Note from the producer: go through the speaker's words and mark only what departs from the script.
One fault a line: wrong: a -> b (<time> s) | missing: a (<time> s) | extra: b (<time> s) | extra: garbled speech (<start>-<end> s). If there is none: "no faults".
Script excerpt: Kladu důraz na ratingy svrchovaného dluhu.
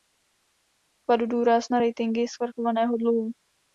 no faults